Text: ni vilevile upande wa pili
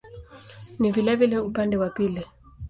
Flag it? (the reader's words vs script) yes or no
no